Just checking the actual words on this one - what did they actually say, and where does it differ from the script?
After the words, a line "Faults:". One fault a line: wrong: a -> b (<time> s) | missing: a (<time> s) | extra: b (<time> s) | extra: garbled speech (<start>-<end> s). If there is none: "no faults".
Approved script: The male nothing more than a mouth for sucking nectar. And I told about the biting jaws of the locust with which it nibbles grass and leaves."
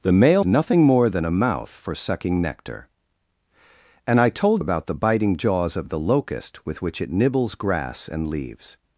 The male nothing more than a mouth for sucking nectar. And I told about the biting jaws of the locust with which it nibbles grass and leaves."
Faults:
no faults